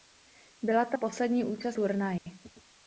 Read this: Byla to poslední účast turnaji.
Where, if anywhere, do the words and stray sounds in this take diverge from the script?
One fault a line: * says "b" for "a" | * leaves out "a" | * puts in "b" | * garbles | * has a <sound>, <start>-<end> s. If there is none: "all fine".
* has a dropout, 2.2-2.3 s